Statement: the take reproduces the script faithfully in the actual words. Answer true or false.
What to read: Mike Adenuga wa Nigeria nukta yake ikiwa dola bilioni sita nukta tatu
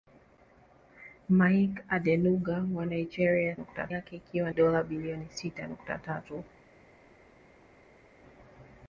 true